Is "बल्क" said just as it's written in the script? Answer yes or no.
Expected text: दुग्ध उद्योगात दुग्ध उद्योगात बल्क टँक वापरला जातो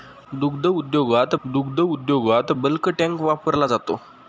yes